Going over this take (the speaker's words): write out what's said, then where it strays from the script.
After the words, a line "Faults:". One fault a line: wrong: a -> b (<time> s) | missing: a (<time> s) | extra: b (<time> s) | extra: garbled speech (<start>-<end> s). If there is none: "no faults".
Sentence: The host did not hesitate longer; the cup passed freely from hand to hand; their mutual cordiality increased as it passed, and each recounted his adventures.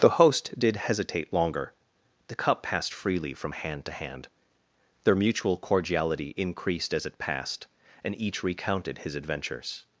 The host did hesitate longer; the cup passed freely from hand to hand; their mutual cordiality increased as it passed, and each recounted his adventures.
Faults:
missing: not (0.8 s)